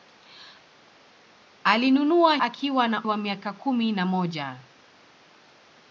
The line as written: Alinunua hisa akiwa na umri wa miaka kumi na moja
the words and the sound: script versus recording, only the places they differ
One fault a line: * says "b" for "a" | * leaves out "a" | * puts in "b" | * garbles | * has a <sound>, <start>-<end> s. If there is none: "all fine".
* leaves out "hisa"
* leaves out "umri"